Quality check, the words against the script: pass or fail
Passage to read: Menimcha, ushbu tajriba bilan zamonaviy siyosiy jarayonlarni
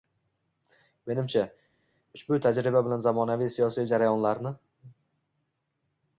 pass